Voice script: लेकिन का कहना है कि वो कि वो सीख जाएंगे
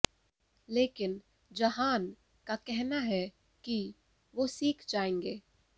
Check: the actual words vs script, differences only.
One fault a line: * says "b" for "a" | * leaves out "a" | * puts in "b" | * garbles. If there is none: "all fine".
* puts in "जहान"
* leaves out "कि वो"